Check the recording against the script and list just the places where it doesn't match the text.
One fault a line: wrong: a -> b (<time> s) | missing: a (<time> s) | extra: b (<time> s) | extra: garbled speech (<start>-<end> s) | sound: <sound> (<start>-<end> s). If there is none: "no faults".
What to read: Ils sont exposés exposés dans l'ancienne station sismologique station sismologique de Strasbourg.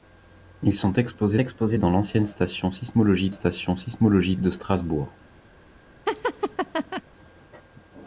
sound: laugh (6.1-7.0 s)